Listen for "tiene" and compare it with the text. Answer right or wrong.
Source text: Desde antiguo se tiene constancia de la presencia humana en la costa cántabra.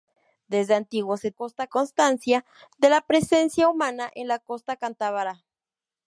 wrong